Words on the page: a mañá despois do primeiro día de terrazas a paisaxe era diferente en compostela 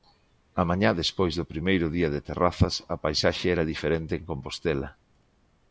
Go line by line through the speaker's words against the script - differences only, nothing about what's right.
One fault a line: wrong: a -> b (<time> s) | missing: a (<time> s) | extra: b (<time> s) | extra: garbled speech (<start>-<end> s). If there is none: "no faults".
no faults